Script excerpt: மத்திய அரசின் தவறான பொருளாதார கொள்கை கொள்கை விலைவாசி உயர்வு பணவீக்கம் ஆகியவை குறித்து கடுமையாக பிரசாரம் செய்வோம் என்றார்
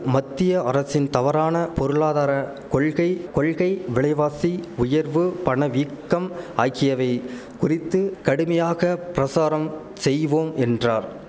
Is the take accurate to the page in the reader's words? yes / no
yes